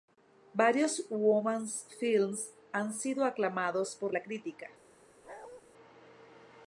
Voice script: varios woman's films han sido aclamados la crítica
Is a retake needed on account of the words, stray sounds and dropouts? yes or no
yes